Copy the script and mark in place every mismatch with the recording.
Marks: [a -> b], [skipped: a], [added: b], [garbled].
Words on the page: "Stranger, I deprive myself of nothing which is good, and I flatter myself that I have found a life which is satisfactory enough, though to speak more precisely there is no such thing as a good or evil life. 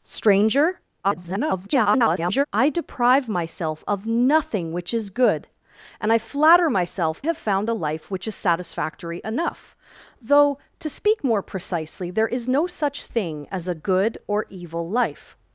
"Stranger, [garbled] I deprive myself of nothing which is good, and I flatter myself [skipped: that I] have found a life which is satisfactory enough, though to speak more precisely there is no such thing as a good or evil life.